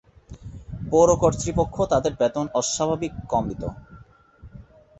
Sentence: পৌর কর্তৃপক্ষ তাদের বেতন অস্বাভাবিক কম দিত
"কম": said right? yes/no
yes